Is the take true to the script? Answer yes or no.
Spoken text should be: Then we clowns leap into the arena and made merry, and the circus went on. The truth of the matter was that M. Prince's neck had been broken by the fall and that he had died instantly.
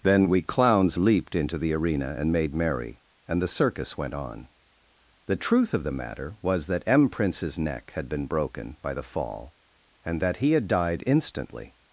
no